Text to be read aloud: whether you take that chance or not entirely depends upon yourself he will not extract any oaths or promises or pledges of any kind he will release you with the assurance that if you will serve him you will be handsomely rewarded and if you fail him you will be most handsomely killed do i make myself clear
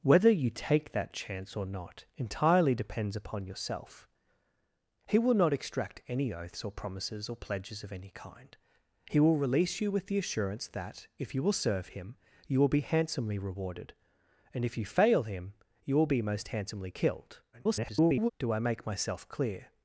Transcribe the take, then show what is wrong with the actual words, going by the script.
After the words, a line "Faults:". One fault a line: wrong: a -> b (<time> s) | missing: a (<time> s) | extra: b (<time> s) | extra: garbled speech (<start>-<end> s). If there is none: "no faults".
whether you take that chance or not entirely depends upon yourself he will not extract any oaths or promises or pledges of any kind he will release you with the assurance that if you will serve him you will be handsomely rewarded and if you fail him you will be most handsomely killed [garbled] do i make myself clear
Faults:
extra: garbled speech (17.5-18.3 s)